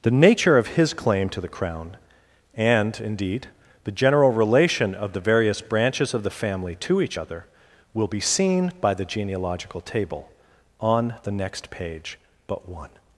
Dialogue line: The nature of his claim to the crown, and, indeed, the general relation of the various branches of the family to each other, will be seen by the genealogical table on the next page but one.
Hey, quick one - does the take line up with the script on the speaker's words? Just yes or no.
yes